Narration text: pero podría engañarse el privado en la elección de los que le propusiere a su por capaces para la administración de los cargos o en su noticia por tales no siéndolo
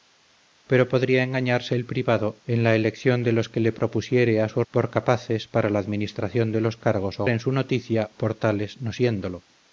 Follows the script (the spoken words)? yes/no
yes